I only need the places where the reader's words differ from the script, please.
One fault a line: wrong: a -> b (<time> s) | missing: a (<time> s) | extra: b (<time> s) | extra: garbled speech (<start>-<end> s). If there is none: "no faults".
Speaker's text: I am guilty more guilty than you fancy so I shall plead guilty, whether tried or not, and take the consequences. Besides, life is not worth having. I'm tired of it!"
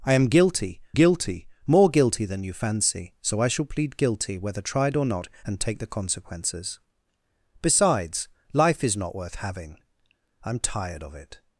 extra: guilty (0.9 s)